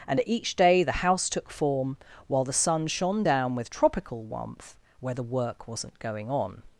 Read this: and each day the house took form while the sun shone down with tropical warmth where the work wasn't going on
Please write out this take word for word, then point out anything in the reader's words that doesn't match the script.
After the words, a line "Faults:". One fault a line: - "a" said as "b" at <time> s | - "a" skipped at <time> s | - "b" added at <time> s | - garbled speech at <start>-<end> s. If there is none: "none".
and each day the house took form while the sun shone down with tropical warmth where the work wasn't going on
Faults:
none